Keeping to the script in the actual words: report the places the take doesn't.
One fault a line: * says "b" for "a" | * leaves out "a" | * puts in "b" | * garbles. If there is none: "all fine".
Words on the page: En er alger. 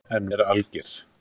all fine